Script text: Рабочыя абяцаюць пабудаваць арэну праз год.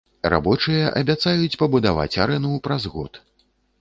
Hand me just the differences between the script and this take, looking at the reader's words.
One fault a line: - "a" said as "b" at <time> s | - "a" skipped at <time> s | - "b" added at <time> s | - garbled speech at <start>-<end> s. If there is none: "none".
none